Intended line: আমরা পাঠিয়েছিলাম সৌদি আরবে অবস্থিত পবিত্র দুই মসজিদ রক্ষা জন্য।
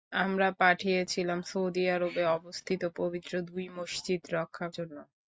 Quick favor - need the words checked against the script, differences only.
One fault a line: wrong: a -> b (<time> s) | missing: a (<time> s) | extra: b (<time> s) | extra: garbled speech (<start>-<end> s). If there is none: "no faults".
no faults